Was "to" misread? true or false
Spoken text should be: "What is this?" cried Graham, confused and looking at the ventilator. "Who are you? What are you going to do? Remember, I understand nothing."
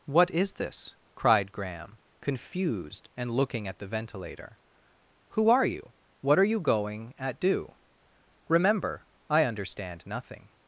true